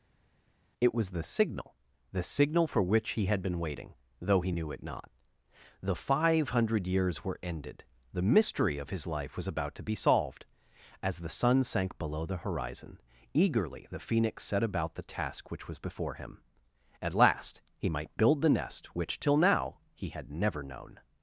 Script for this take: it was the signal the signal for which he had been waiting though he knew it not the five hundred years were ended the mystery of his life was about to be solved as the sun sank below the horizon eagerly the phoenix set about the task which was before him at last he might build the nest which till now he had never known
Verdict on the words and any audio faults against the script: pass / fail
pass